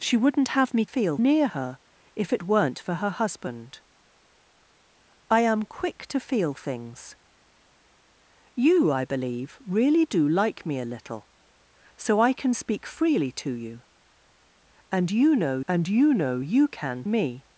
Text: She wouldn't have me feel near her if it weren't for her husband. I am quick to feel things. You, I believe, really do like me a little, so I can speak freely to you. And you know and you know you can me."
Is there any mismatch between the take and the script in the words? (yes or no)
no